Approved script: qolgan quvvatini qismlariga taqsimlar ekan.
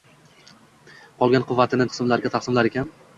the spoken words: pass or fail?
pass